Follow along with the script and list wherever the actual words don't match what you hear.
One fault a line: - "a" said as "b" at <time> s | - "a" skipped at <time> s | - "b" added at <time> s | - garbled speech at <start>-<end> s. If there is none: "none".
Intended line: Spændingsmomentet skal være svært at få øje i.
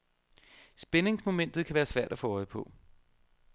- "skal" said as "kan" at 1.6 s
- "i" said as "på" at 2.5 s